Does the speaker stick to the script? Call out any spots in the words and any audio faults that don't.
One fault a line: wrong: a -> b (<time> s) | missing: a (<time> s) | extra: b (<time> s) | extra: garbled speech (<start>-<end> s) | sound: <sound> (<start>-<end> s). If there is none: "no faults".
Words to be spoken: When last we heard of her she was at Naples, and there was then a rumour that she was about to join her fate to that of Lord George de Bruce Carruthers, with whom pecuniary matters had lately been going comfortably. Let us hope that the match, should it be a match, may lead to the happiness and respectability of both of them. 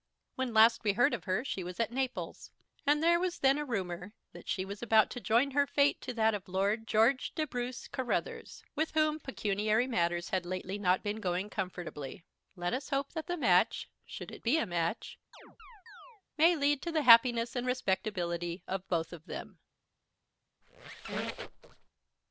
extra: not (10.8 s)
sound: chirp (15.3-16.2 s)
sound: squeak (20.6-21.9 s)